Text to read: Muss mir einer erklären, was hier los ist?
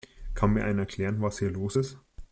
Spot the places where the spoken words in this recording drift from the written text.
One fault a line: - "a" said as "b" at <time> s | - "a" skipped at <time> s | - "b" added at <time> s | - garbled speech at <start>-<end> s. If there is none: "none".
- "Muss" said as "Kann" at 0.3 s